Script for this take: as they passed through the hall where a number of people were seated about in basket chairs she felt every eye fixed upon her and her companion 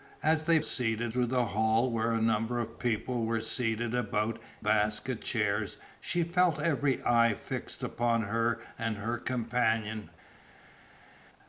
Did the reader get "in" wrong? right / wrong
wrong